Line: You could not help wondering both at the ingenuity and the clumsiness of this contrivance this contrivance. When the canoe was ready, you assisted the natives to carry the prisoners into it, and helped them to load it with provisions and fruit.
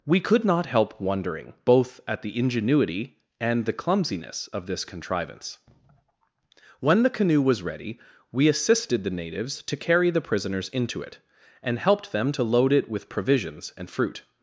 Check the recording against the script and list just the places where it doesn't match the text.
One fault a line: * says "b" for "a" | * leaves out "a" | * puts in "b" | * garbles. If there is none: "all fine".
* says "We" for "You"
* leaves out "this contrivance"
* says "we" for "you"